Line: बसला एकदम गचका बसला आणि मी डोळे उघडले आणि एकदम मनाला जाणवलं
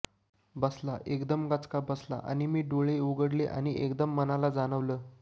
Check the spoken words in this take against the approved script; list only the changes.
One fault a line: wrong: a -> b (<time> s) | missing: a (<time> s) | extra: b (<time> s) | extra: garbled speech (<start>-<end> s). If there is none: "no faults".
no faults